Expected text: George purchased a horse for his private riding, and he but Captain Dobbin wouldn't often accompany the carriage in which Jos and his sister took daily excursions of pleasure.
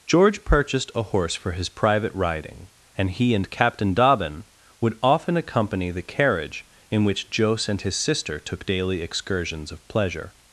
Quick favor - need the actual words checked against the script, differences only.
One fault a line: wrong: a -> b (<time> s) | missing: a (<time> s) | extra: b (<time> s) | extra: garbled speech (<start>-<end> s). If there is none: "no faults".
wrong: but -> and (3.4 s)
wrong: wouldn't -> would (4.8 s)